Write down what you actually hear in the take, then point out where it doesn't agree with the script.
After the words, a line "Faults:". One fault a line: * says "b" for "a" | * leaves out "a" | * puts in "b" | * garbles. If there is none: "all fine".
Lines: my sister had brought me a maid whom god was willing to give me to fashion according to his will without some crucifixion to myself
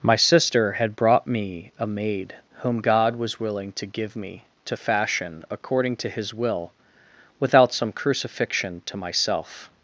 my sister had brought me a maid whom god was willing to give me to fashion according to his will without some crucifixion to myself
Faults:
all fine